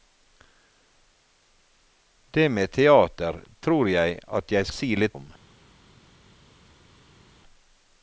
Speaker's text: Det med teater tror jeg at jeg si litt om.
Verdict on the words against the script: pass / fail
pass